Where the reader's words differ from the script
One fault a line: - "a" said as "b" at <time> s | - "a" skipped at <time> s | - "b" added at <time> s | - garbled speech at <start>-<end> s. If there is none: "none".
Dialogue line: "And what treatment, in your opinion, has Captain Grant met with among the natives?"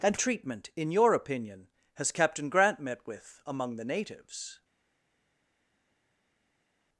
- "what" skipped at 0.1 s